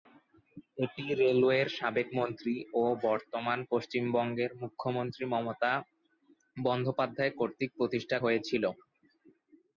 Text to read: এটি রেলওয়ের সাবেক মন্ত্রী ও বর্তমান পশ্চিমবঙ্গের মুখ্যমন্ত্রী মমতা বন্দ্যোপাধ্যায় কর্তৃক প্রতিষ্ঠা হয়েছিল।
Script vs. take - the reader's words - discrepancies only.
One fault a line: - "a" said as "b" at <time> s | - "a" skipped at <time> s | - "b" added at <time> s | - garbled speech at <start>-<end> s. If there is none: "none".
none